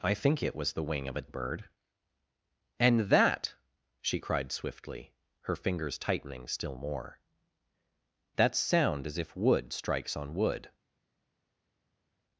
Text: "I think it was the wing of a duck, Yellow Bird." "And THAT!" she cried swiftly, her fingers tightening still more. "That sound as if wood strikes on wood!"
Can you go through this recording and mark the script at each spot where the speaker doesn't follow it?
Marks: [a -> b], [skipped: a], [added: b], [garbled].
"I think it was the wing of a [skipped: duck, Yellow] Bird." "And THAT!" she cried swiftly, her fingers tightening still more. "That sound as if wood strikes on wood!"